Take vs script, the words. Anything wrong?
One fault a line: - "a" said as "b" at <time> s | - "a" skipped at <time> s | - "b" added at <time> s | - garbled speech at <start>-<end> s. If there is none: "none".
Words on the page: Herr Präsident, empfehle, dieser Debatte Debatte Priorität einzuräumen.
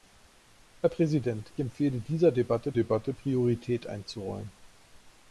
none